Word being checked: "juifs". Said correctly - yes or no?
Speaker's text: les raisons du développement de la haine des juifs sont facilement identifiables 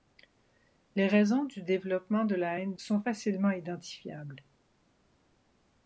no